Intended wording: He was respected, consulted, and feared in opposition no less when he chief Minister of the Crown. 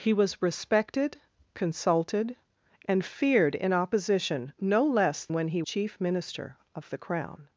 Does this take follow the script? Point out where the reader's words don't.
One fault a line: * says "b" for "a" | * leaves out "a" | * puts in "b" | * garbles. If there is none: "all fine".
all fine